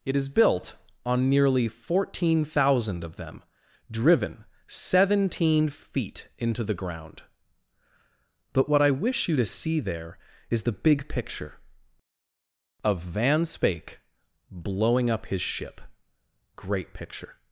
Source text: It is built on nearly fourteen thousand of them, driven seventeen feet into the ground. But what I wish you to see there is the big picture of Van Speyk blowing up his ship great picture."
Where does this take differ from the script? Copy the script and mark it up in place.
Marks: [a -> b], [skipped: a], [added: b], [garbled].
It is built on nearly fourteen thousand of them, driven seventeen feet into the ground. But what I wish you to see there is the big picture of Van Speyk blowing up his ship great picture."